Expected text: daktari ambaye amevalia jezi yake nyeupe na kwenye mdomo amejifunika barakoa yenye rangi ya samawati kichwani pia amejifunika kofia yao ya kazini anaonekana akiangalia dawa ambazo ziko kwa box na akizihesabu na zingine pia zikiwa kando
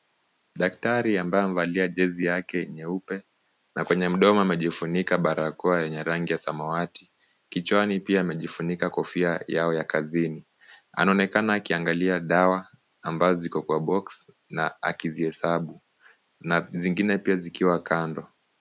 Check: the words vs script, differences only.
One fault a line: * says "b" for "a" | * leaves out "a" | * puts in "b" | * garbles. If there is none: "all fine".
all fine